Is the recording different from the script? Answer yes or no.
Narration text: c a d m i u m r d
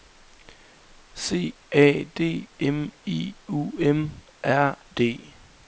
no